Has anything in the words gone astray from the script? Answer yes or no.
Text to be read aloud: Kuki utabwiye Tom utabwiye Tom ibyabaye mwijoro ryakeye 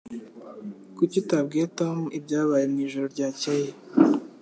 yes